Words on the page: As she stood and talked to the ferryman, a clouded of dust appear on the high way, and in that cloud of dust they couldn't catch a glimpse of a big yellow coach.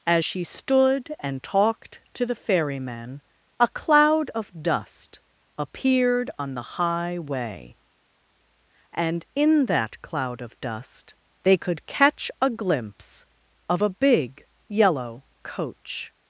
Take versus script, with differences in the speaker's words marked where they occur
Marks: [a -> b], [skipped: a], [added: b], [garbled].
As she stood and talked to the ferryman, a [clouded -> cloud] of dust [appear -> appeared] on the high way, and in that cloud of dust they [couldn't -> could] catch a glimpse of a big yellow coach.